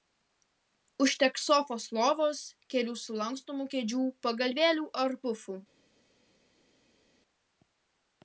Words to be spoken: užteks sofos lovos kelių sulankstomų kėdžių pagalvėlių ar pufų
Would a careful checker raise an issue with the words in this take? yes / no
no